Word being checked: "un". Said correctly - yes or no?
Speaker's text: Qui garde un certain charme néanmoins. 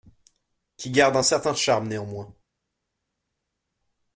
yes